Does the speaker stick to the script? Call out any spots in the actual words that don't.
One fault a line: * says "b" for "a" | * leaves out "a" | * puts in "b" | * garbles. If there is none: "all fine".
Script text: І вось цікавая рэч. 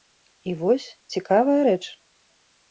all fine